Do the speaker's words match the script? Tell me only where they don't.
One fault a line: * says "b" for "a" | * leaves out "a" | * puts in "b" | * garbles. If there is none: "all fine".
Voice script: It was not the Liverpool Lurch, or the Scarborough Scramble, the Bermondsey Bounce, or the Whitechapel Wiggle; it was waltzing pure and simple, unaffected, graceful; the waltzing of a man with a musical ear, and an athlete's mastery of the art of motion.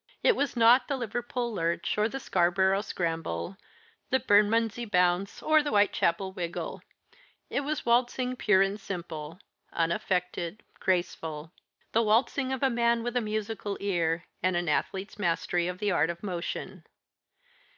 all fine